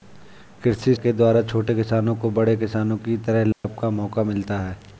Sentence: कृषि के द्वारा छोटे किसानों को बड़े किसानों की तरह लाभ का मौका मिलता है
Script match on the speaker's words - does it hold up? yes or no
yes